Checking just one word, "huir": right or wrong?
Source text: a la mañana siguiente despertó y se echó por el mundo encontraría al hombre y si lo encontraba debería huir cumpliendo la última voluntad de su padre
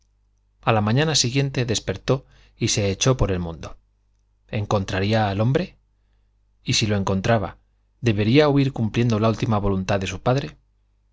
right